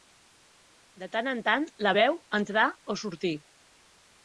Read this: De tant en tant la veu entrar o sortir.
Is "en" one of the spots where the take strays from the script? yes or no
no